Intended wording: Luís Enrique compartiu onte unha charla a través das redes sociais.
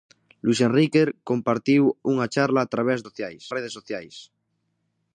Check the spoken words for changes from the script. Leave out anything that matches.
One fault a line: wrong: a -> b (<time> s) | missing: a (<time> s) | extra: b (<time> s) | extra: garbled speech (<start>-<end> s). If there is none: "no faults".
missing: onte (1.8 s)
wrong: das -> sociais (3.1 s)